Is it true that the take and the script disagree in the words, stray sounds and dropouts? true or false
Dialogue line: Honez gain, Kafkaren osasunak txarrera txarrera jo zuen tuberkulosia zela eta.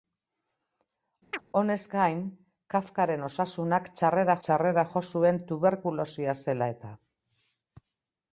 true